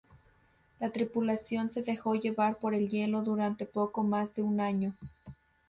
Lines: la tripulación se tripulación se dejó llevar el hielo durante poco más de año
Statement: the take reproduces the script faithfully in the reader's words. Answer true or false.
false